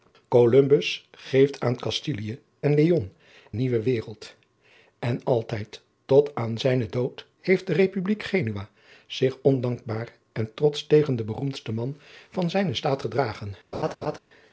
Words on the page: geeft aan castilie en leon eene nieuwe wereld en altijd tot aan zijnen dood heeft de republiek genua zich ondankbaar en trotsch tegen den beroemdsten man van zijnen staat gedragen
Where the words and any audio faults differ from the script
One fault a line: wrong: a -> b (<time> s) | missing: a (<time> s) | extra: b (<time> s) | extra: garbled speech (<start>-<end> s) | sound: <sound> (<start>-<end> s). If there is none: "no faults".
missing: eene (3.1 s)
sound: laugh (13.7-14.2 s)